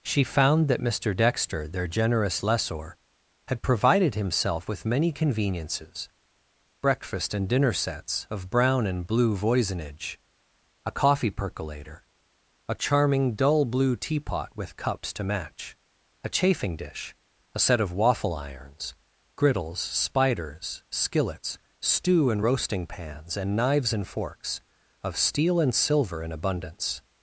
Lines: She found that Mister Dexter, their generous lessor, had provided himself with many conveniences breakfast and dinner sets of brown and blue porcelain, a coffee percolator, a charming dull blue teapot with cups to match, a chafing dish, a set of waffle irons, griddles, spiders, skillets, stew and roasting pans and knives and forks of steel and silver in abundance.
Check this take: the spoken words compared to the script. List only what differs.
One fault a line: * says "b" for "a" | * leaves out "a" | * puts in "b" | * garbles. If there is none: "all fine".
* says "voisinage" for "porcelain"